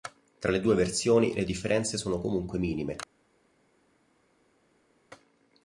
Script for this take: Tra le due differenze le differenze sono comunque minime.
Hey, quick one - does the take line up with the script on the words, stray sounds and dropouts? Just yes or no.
no